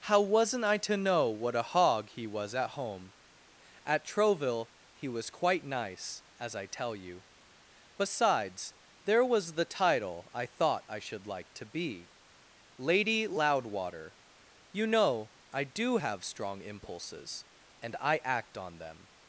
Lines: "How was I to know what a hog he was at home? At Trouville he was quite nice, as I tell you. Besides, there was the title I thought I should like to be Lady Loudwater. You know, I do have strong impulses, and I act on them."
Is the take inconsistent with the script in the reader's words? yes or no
yes